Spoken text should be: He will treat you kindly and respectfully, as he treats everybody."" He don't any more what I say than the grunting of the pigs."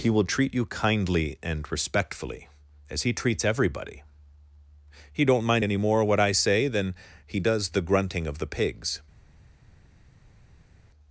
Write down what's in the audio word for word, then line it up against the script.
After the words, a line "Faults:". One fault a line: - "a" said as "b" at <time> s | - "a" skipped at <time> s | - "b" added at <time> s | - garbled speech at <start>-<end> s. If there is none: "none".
He will treat you kindly and respectfully, as he treats everybody."" He don't mind any more what I say than he does the grunting of the pigs."
Faults:
- "mind" added at 5.5 s
- "he does" added at 7.3 s